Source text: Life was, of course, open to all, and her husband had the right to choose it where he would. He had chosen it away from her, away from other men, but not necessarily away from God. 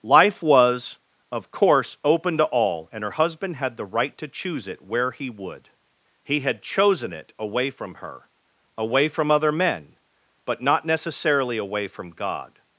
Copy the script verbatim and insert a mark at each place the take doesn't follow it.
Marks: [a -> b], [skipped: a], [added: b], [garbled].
Life was, of course, open to all, and her husband had the right to choose it where he would. He had chosen it away from her, away from other men, but not necessarily away from God.